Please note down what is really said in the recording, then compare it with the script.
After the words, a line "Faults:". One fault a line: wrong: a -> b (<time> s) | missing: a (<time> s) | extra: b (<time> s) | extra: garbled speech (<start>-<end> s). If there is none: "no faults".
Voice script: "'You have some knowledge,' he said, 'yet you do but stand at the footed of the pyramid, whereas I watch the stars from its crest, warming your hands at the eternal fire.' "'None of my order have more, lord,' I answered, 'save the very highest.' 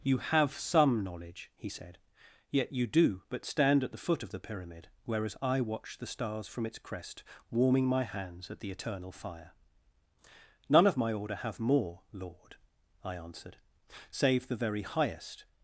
"'You have some knowledge,' he said, 'yet you do but stand at the foot of the pyramid, whereas I watch the stars from its crest, warming my hands at the eternal fire.' "'None of my order have more, lord,' I answered, 'save the very highest.'
Faults:
wrong: footed -> foot (4.0 s)
wrong: your -> my (7.9 s)